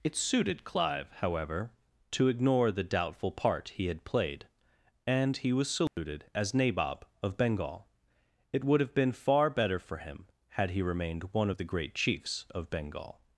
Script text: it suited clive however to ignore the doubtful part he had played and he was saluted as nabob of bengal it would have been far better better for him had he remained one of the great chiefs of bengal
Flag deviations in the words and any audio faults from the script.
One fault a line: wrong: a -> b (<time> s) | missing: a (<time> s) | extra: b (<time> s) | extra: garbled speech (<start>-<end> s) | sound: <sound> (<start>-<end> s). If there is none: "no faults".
sound: dropout (5.9-6.0 s)
missing: better (9.8 s)